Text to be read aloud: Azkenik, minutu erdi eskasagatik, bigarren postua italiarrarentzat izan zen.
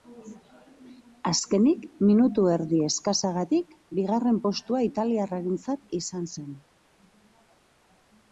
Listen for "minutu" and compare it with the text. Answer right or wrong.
right